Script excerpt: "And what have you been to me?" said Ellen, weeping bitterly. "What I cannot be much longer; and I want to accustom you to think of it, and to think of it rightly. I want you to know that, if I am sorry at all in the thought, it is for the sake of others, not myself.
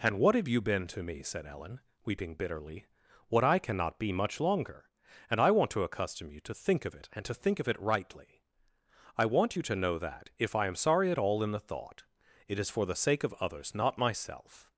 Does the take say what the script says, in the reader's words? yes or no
yes